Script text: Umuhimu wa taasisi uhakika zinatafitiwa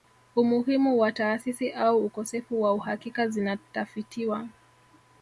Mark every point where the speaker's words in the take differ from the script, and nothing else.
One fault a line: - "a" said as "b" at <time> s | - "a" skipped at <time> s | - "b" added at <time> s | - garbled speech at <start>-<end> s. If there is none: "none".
- "au ukosefu wa" added at 1.7 s